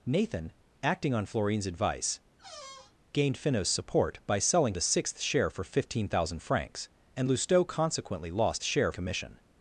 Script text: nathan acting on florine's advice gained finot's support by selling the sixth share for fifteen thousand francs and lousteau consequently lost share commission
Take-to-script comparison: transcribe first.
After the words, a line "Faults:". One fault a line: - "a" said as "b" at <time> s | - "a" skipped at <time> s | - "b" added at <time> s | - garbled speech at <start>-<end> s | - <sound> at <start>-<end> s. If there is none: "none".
nathan acting on florine's advice gained finot's support by selling the sixth share for fifteen thousand francs and lousteau consequently lost share commission
Faults:
- squeak at 2.4-3.0 s